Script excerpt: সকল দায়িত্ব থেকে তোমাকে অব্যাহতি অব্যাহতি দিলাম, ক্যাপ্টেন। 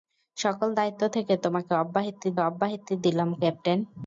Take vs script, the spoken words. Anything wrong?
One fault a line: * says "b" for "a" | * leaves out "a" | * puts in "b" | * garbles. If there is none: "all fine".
all fine